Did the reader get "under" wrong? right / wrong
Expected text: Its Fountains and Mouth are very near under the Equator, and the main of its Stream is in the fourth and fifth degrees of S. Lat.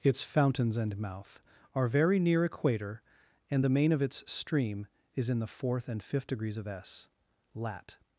wrong